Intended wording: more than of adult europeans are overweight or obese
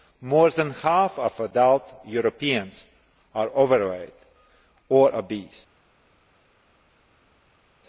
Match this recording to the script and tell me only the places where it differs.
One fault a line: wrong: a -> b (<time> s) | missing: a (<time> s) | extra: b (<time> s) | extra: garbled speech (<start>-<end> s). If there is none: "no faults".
extra: half (0.7 s)